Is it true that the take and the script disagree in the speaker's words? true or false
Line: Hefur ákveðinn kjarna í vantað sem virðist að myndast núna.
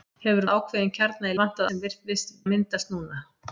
false